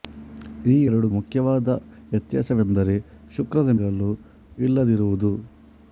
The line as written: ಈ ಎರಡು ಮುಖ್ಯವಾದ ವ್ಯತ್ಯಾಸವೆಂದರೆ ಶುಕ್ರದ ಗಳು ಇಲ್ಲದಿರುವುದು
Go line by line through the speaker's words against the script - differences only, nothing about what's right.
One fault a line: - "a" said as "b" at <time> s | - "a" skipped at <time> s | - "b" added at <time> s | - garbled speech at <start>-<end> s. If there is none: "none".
none